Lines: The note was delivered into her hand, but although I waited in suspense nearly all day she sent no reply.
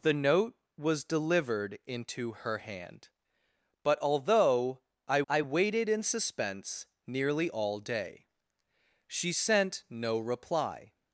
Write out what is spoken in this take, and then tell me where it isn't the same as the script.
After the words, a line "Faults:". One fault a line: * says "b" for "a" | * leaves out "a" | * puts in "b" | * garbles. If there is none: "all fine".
The note was delivered into her hand, but although I I waited in suspense nearly all day she sent no reply.
Faults:
* puts in "I"